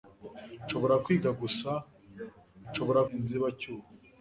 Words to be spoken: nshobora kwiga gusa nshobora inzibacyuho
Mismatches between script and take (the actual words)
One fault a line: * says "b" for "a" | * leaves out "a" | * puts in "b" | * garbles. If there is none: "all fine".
all fine